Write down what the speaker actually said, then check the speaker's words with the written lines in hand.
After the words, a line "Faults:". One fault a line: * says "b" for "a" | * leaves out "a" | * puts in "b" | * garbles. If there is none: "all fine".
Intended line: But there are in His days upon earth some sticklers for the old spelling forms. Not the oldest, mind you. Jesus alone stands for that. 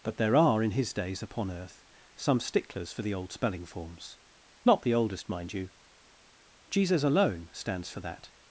But there are in His days upon earth some sticklers for the old spelling forms. Not the oldest, mind you. Jesus alone stands for that.
Faults:
all fine